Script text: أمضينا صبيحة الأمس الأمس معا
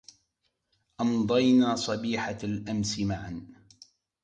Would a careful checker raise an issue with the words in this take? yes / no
yes